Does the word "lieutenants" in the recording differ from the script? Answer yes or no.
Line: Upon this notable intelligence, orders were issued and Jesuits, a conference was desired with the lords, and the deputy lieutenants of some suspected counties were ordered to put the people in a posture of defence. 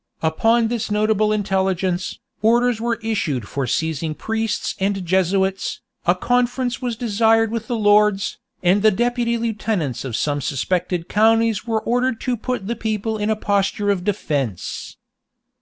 no